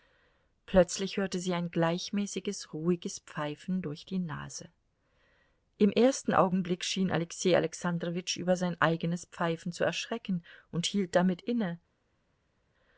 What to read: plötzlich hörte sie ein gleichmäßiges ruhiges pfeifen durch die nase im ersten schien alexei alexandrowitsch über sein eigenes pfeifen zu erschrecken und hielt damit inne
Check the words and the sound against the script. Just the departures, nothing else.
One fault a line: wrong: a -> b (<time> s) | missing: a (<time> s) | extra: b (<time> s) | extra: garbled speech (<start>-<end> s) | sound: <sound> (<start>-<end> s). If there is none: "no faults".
extra: augenblick (6.3 s)